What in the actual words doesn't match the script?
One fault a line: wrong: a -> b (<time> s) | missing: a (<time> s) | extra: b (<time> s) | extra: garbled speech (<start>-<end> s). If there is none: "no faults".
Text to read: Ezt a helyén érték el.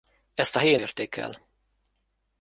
no faults